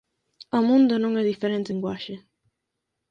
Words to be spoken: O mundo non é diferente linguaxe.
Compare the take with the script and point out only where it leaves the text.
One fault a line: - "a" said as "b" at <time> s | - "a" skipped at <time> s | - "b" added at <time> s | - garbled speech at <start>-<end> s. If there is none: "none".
none